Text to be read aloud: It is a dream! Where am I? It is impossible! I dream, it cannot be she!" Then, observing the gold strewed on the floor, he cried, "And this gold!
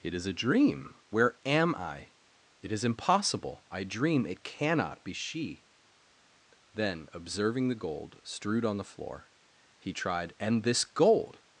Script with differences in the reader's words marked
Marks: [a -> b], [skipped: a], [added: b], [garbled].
It is a dream! Where am I? It is impossible! I dream, it cannot be she!" Then, observing the gold strewed on the floor, he [cried, -> tried] "And this gold!